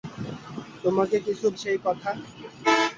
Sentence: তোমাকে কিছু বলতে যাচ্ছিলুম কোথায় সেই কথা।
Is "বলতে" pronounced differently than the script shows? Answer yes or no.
yes